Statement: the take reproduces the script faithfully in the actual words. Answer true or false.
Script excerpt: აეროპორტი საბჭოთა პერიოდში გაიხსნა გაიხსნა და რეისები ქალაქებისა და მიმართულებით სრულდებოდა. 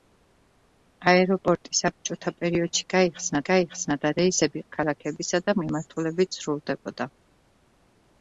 true